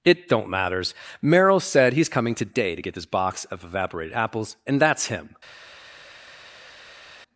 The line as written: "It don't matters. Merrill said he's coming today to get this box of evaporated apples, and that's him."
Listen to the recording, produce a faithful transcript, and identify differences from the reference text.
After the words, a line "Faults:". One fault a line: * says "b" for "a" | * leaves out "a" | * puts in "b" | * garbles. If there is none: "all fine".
"It don't matters. Merrill said he's coming today to get this box of evaporated apples, and that's him."
Faults:
all fine